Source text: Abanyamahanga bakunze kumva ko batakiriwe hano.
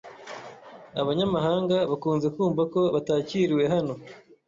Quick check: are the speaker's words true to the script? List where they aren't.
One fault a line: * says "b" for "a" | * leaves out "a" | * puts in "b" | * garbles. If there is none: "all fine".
all fine